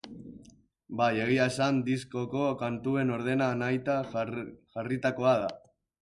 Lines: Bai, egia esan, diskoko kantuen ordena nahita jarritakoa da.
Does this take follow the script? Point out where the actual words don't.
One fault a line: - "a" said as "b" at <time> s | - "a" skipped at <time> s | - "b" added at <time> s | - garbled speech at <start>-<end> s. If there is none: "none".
none